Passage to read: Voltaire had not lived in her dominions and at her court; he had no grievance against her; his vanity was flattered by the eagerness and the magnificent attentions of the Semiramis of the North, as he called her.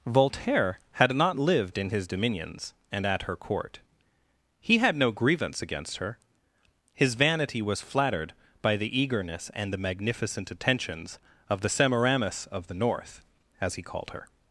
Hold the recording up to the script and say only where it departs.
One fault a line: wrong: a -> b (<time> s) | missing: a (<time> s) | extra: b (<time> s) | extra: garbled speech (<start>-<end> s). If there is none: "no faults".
wrong: her -> his (1.9 s)